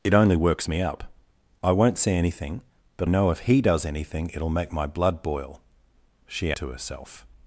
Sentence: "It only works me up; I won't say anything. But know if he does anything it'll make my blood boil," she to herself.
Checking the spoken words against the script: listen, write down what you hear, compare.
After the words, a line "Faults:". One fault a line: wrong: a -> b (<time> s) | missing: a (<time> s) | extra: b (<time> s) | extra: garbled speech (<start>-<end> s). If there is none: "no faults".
"It only works me up; I won't say anything. But know if he does anything it'll make my blood boil," she to herself.
Faults:
no faults